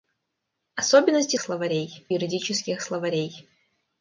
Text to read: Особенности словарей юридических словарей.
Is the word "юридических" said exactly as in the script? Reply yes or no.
yes